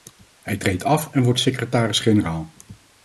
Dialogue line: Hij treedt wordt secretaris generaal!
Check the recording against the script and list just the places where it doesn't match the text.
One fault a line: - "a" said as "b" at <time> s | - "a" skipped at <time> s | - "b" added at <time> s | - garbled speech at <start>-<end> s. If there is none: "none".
- "af en" added at 0.8 s